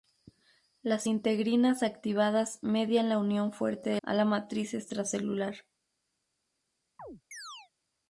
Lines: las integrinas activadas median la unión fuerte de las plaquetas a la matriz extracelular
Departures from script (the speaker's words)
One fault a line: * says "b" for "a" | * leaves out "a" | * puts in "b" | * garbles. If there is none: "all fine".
* leaves out "las plaquetas"